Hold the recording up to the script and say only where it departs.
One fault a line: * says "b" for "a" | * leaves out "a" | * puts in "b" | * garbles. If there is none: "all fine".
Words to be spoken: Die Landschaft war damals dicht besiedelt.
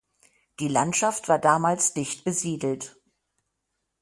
all fine